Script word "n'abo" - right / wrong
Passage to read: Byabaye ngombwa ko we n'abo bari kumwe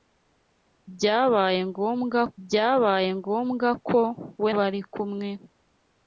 wrong